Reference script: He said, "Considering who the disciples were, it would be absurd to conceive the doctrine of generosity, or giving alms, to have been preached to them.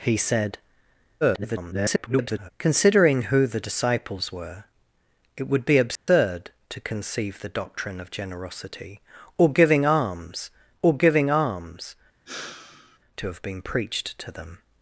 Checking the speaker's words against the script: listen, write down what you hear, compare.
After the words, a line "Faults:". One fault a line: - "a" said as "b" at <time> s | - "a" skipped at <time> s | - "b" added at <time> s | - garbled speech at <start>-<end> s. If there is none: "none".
He said, [garbled] "Considering who the disciples were, it would be absurd to conceive the doctrine of generosity, or giving alms or giving alms, to have been preached to them.
Faults:
- garbled speech at 1.2-2.5 s
- "or giving alms" added at 10.8 s